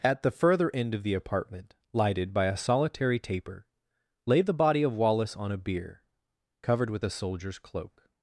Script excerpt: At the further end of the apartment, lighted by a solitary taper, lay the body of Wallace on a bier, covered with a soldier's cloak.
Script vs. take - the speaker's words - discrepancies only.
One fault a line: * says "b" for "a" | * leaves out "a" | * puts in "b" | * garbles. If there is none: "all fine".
all fine